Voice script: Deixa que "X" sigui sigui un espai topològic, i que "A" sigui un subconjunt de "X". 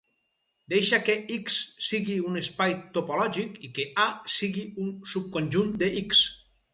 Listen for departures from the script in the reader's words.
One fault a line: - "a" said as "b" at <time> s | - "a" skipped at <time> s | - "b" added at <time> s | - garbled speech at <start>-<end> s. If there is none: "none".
- "sigui" skipped at 2.1 s